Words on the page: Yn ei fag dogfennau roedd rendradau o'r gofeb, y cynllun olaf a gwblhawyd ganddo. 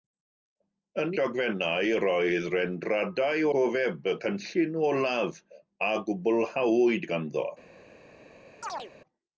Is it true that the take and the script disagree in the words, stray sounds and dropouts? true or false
true